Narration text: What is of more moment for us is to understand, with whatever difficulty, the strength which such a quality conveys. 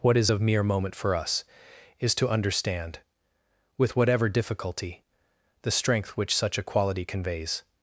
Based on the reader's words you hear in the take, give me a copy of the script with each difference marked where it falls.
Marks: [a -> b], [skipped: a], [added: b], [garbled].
What is of [more -> mere] moment for us is to understand, with whatever difficulty, the strength which such a quality conveys.